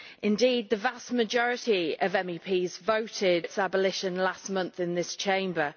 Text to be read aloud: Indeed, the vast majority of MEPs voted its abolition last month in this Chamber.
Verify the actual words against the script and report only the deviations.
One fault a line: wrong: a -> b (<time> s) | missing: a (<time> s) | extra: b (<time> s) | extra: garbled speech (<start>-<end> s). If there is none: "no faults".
no faults